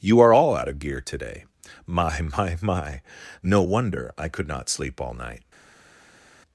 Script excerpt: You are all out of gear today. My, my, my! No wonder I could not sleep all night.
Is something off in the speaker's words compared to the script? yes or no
no